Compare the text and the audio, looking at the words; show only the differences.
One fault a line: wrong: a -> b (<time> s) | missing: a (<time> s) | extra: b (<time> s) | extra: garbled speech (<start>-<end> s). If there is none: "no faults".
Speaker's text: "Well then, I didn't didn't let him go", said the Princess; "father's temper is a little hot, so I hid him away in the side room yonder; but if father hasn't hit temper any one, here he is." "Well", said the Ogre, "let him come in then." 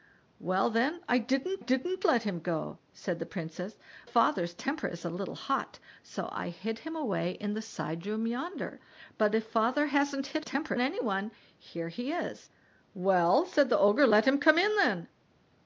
no faults